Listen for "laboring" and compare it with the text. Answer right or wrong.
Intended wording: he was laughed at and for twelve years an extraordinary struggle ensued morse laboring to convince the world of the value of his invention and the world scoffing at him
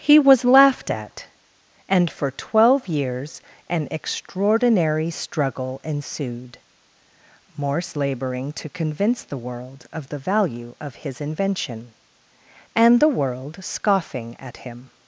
right